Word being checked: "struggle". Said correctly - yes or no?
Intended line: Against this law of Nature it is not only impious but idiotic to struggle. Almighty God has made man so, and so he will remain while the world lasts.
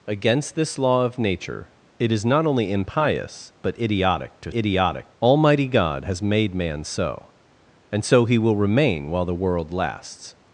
no